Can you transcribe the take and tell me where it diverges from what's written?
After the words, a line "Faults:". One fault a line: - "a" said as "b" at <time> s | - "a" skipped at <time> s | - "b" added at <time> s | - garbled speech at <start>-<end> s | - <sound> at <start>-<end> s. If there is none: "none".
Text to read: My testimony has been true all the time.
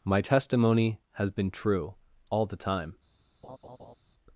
My testimony has been true all the time.
Faults:
- laugh at 3.4-4.0 s